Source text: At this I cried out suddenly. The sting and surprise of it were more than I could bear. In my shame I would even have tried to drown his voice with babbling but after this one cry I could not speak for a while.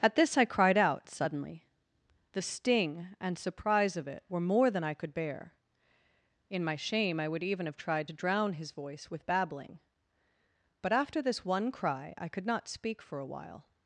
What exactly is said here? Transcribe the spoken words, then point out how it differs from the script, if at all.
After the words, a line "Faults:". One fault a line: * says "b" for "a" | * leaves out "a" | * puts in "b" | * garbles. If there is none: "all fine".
At this I cried out suddenly. The sting and surprise of it were more than I could bear. In my shame I would even have tried to drown his voice with babbling but after this one cry I could not speak for a while.
Faults:
all fine